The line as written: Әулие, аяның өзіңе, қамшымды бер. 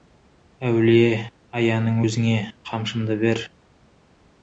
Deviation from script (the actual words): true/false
false